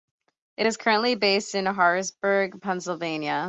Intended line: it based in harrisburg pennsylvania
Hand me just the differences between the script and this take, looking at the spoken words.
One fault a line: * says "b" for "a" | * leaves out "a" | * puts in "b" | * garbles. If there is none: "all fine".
* puts in "is currently"